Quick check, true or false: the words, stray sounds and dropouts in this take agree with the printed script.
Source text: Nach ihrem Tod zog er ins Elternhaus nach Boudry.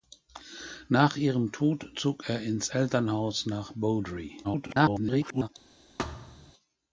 false